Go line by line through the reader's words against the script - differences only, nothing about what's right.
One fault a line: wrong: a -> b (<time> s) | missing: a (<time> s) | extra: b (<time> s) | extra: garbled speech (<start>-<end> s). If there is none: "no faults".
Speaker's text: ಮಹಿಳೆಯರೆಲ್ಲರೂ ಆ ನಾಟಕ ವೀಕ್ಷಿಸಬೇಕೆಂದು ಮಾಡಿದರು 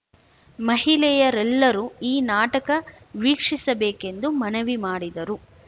wrong: ಆ -> ಈ (2.0 s)
extra: ಮನವಿ (4.4 s)